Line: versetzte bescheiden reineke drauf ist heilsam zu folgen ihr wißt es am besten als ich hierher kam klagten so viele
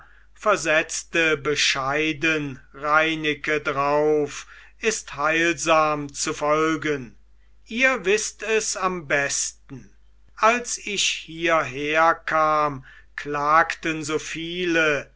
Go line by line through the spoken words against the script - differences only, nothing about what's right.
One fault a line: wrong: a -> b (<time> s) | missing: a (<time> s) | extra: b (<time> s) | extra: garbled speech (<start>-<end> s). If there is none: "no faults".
no faults